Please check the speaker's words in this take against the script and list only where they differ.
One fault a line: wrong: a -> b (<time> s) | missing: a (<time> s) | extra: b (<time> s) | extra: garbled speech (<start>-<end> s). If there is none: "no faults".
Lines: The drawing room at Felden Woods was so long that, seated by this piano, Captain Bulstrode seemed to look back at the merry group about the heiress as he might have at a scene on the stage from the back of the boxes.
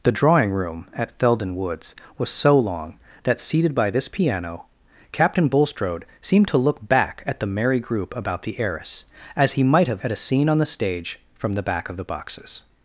no faults